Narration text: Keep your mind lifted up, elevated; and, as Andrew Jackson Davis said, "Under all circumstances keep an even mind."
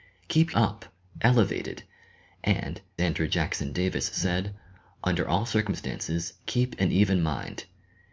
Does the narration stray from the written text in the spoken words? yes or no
yes